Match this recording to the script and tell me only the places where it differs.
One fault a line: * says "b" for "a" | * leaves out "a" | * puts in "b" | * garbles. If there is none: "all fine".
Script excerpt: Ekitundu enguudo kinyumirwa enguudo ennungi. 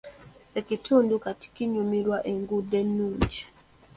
* says "kati" for "enguudo"